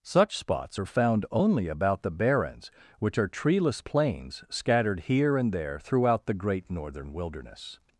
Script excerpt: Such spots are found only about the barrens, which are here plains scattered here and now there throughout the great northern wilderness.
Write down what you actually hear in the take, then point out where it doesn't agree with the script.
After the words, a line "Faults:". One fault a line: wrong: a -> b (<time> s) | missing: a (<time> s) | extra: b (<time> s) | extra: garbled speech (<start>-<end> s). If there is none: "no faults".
Such spots are found only about the barrens, which are treeless plains scattered here and there throughout the great northern wilderness.
Faults:
wrong: here -> treeless (3.3 s)
missing: now (5.5 s)